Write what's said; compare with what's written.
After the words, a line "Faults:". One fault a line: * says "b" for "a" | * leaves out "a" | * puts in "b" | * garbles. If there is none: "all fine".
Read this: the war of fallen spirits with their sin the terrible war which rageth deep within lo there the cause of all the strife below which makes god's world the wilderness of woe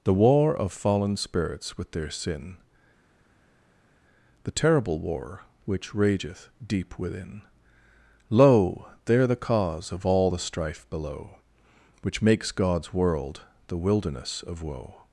the war of fallen spirits with their sin the terrible war which rageth deep within lo there the cause of all the strife below which makes god's world the wilderness of woe
Faults:
all fine